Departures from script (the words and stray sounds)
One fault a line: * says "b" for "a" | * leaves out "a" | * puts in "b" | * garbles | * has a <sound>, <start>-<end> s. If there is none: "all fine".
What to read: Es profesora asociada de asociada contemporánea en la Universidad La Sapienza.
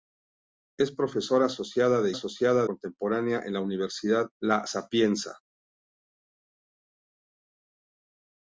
all fine